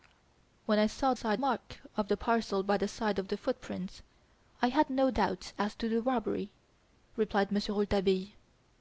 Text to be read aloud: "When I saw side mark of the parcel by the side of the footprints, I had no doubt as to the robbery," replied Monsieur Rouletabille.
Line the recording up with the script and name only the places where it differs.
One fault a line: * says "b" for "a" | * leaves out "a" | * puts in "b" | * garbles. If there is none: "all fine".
all fine